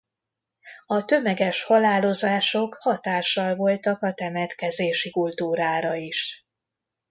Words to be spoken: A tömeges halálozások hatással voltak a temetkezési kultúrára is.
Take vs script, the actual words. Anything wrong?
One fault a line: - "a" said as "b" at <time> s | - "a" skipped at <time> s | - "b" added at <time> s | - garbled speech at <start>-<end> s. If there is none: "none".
none